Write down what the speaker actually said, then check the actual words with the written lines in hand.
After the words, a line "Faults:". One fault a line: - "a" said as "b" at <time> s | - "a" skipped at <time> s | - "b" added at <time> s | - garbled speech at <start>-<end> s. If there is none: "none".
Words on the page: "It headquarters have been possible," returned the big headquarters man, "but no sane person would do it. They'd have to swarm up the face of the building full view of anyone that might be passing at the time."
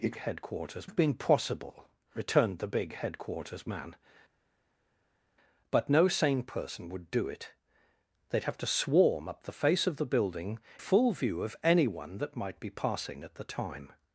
"It headquarters have been possible," returned the big headquarters man, "but no sane person would do it. They'd have to swarm up the face of the building full view of anyone that might be passing at the time."
Faults:
none